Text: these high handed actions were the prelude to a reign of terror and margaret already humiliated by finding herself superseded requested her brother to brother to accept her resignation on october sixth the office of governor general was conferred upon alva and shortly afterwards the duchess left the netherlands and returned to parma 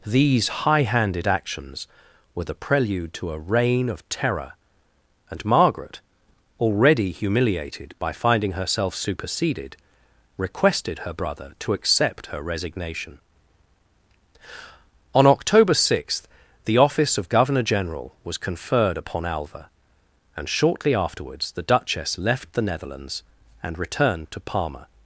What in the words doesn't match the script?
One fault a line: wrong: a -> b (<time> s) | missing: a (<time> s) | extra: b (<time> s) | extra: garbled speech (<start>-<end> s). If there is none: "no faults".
missing: brother to (11.7 s)